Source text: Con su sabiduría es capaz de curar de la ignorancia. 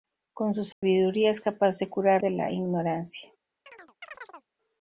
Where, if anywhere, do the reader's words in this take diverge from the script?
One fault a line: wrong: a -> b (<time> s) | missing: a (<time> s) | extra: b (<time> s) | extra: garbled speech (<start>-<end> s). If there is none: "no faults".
no faults